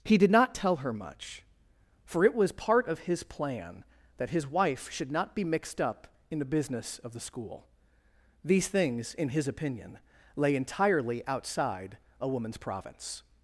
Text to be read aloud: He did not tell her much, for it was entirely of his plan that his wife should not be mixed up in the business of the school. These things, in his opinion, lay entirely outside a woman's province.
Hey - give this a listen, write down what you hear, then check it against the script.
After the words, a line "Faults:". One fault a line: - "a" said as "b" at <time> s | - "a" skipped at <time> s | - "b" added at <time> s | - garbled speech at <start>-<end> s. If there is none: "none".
He did not tell her much, for it was part of his plan that his wife should not be mixed up in the business of the school. These things, in his opinion, lay entirely outside a woman's province.
Faults:
- "entirely" said as "part" at 2.5 s